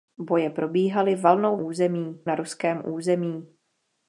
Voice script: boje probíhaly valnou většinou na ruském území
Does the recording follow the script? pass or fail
fail